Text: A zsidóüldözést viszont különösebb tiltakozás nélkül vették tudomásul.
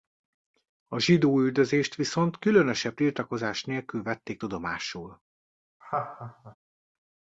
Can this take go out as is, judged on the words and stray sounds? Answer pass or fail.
fail